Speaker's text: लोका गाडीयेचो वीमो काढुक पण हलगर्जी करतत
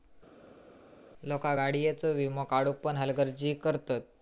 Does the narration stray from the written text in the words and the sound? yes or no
no